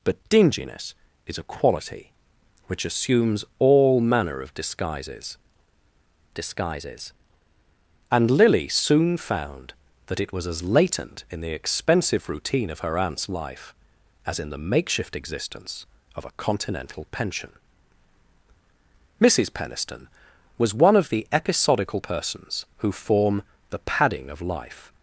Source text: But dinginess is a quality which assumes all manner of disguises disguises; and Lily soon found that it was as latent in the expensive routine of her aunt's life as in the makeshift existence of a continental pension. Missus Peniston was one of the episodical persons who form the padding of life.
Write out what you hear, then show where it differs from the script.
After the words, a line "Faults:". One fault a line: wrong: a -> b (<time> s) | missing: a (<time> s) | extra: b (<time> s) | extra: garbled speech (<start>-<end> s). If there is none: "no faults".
But dinginess is a quality which assumes all manner of disguises disguises; and Lily soon found that it was as latent in the expensive routine of her aunt's life as in the makeshift existence of a continental pension. Missus Peniston was one of the episodical persons who form the padding of life.
Faults:
no faults